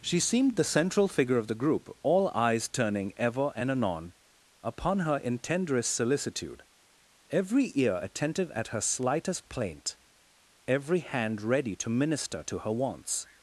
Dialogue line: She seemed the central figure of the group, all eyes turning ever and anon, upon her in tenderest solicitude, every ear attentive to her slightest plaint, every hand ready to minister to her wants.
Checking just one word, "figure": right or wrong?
right